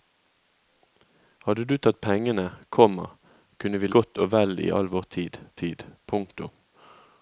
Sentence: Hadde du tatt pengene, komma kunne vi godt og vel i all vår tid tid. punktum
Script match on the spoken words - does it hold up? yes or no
yes